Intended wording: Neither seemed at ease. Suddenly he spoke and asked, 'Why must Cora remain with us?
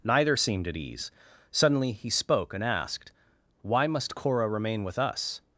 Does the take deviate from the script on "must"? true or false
false